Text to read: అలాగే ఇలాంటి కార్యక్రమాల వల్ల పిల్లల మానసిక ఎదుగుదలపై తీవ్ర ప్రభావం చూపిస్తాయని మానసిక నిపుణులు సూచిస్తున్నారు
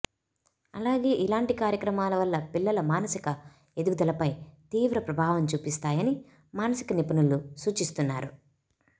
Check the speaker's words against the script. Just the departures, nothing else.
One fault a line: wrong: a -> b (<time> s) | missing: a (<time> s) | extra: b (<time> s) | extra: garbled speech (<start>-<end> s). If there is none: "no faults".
no faults